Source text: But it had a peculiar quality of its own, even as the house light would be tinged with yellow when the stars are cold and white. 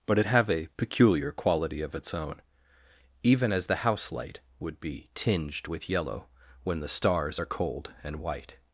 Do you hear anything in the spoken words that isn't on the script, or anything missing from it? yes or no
yes